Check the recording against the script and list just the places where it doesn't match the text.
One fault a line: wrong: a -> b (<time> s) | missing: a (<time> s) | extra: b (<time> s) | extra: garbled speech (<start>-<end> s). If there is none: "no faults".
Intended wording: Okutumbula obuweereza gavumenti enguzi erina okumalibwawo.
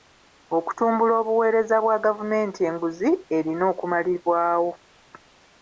extra: bwa (1.8 s)